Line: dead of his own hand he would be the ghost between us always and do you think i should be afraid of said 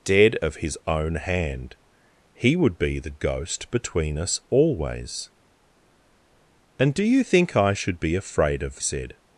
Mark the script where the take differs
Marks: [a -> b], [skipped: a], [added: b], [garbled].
dead of his own hand he would be the ghost between us always and do you think i should be afraid of said